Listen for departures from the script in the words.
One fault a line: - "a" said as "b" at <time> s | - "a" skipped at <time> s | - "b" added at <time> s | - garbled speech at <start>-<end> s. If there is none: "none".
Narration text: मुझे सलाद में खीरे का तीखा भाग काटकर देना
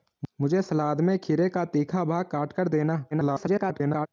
- garbled speech at 3.1-4.1 s